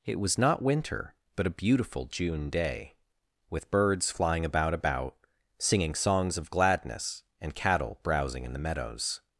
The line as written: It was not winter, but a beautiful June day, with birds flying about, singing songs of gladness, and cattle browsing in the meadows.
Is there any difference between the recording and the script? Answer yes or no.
yes